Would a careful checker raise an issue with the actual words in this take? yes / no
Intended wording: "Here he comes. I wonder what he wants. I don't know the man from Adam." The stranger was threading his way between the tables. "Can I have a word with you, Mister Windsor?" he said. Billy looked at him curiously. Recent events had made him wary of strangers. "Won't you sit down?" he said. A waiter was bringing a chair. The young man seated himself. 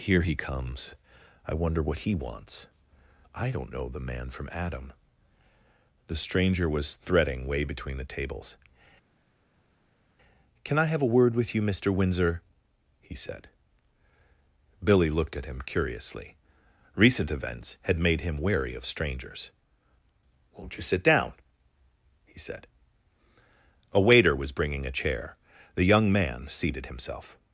yes